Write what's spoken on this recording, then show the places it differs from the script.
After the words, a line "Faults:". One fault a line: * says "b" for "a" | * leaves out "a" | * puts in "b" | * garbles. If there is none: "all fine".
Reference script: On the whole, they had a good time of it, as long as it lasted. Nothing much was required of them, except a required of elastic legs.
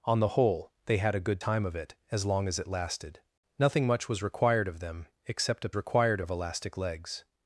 On the whole, they had a good time of it, as long as it lasted. Nothing much was required of them, except a required of elastic legs.
Faults:
all fine